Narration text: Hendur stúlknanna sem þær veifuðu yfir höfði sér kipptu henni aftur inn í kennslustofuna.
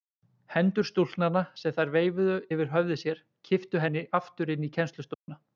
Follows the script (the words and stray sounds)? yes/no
no